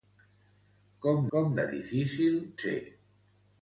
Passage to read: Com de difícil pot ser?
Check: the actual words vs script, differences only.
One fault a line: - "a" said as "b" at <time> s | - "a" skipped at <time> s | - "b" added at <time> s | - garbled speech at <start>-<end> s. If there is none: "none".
- "com" added at 1.3 s
- "pot" skipped at 2.4 s